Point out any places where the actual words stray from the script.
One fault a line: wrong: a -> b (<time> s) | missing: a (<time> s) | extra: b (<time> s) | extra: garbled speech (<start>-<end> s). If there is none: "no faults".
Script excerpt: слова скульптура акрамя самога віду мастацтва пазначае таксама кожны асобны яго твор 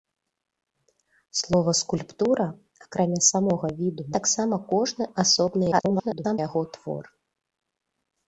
missing: мастацтва пазначае (4.1 s)
extra: garbled speech (5.7-6.4 s)